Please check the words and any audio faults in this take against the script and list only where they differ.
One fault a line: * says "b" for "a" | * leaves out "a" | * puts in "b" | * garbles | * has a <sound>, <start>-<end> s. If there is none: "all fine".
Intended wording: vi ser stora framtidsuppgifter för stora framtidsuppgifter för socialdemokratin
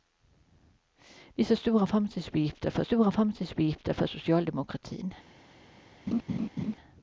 * has a laugh, 6.1-6.8 s